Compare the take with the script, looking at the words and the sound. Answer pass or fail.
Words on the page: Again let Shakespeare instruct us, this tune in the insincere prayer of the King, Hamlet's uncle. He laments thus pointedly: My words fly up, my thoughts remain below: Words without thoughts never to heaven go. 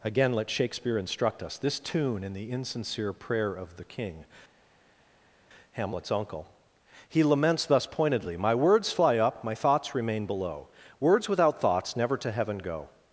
pass